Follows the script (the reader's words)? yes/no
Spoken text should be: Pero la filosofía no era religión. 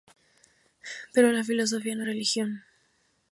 no